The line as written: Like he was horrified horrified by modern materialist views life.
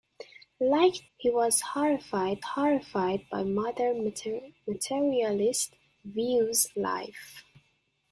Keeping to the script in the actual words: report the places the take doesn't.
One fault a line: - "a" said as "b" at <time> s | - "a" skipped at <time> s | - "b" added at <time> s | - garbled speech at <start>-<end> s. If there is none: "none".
none